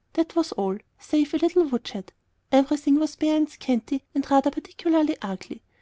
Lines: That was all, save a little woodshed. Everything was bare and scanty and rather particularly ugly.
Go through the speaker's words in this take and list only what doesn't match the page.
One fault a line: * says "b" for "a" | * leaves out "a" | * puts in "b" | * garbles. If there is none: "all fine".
all fine